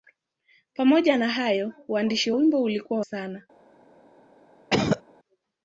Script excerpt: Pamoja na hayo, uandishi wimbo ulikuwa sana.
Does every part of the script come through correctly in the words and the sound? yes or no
no